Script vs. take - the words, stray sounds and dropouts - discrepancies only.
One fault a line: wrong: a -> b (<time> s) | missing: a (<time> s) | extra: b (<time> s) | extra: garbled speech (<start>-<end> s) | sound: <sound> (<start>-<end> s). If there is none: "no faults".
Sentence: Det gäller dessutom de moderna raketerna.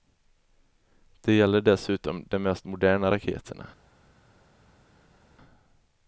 extra: mest (2.4 s)